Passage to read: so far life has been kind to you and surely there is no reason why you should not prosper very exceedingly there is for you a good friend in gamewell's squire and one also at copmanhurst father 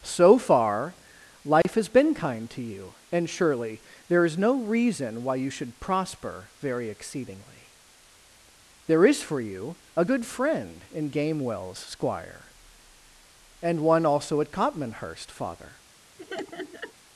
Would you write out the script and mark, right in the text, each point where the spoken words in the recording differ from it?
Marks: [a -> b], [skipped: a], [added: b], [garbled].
so far life has been kind to you and surely there is no reason why you should [skipped: not] prosper very exceedingly there is for you a good friend in gamewell's squire and one also at copmanhurst father